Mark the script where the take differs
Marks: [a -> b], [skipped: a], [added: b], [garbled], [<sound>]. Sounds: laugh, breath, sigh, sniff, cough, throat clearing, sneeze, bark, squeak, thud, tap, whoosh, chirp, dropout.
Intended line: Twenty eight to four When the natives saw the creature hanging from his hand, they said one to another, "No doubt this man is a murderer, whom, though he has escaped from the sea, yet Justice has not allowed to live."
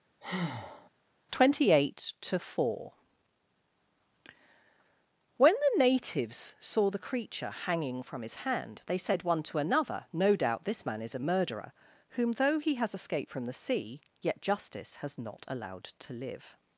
[breath] Twenty eight to four When the natives saw the creature hanging from his hand, they said one to another, "No doubt this man is a murderer, whom, though he has escaped from the sea, yet Justice has not allowed to live."